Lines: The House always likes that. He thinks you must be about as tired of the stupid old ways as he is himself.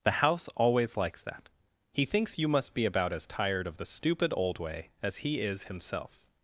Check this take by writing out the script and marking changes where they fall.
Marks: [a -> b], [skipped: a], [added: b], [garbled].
The House always likes that. He thinks you must be about as tired of the stupid old [ways -> way] as he is himself.